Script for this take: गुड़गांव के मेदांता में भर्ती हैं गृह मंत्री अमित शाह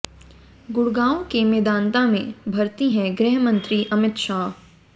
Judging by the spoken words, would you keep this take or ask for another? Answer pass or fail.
pass